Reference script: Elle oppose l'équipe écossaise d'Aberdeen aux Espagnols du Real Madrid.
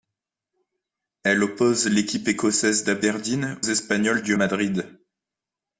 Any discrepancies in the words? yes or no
yes